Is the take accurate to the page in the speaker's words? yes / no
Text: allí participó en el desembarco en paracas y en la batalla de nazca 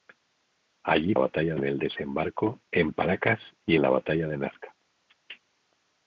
no